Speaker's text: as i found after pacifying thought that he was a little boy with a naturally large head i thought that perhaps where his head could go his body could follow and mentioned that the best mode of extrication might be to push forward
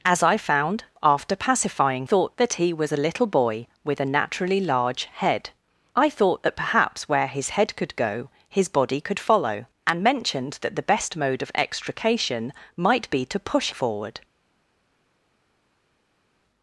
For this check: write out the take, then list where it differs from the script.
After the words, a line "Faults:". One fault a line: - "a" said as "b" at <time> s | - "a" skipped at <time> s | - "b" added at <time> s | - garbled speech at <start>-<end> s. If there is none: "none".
as i found after pacifying thought that he was a little boy with a naturally large head i thought that perhaps where his head could go his body could follow and mentioned that the best mode of extrication might be to push forward
Faults:
none